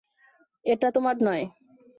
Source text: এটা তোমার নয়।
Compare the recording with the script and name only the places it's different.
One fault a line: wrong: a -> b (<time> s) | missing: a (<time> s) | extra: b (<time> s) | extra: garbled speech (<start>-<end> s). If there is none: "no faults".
no faults